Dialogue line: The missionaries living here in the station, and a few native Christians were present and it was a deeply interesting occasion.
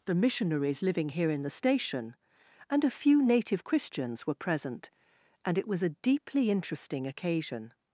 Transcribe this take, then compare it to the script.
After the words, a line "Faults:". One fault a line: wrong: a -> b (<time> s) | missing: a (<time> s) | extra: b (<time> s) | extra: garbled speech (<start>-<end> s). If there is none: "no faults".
The missionaries living here in the station, and a few native Christians were present and it was a deeply interesting occasion.
Faults:
no faults